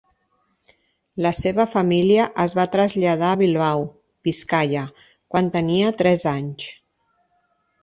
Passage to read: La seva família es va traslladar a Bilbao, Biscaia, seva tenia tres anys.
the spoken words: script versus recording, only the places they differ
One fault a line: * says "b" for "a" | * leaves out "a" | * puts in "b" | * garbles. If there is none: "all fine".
* says "quan" for "seva"